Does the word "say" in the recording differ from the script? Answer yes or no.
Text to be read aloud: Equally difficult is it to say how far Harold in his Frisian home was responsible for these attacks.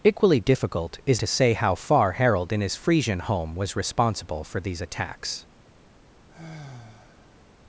no